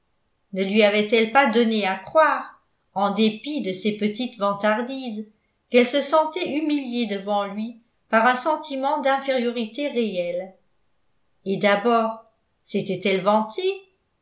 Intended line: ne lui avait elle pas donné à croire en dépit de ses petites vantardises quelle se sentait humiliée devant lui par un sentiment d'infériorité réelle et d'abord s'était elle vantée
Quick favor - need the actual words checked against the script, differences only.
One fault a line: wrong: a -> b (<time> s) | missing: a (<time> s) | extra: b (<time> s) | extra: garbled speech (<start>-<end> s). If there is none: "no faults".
no faults